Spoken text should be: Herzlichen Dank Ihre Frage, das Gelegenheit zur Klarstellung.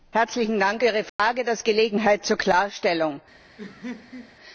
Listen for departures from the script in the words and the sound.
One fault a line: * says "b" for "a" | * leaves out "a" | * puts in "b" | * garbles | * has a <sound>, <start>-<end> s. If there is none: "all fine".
* has a dropout, 1.1-1.2 s
* has a laugh, 3.6-4.4 s